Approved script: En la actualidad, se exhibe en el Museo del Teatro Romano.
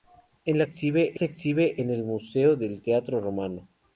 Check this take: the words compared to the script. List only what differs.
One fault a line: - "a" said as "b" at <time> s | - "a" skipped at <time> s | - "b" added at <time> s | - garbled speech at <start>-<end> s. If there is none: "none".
- "actualidad" said as "exhibe" at 0.6 s